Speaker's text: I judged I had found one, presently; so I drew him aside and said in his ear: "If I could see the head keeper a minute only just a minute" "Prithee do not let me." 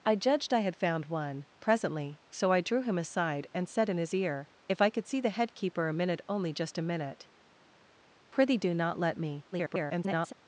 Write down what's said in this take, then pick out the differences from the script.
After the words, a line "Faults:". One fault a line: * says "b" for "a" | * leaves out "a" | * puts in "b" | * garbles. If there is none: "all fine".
I judged I had found one, presently; so I drew him aside and said in his ear: "If I could see the head keeper a minute only just a minute" "Prithee do not let me." [garbled]
Faults:
* garbles